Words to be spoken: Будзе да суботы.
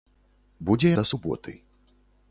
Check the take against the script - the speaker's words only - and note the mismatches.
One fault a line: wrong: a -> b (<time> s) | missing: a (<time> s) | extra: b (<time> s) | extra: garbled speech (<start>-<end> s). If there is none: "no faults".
no faults